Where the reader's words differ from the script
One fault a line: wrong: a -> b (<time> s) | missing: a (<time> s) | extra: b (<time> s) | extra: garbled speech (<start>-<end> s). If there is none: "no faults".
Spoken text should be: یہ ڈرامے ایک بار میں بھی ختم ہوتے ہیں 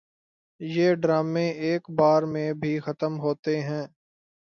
no faults